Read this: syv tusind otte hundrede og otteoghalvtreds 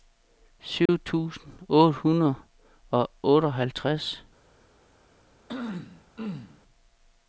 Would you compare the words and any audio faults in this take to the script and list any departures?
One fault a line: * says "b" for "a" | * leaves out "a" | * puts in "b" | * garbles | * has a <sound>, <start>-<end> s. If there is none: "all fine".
* has a dropout, 0.9-0.9 s
* has a throat clearing, 5.5-6.6 s